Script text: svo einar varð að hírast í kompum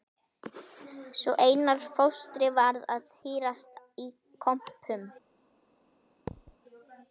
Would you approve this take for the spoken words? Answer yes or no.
no